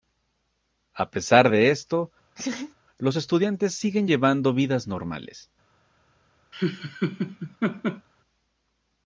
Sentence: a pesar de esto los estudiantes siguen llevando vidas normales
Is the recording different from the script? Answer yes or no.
no